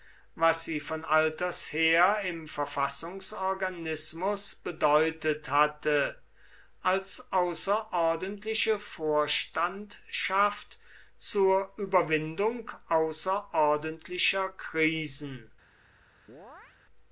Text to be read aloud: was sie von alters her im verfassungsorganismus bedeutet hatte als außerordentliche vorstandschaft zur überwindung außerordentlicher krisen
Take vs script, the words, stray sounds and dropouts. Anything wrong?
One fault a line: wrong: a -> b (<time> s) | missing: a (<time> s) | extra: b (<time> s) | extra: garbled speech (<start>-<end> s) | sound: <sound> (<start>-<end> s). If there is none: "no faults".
sound: chirp (16.3-16.8 s)